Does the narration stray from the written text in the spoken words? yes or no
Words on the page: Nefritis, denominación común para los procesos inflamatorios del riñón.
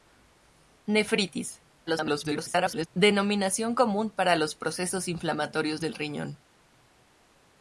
yes